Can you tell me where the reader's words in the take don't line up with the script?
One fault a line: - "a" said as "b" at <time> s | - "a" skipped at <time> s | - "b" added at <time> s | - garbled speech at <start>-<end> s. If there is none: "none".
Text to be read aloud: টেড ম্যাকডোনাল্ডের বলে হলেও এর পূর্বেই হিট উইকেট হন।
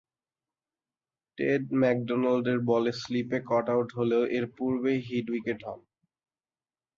- "স্লিপে কট আউট" added at 3.0 s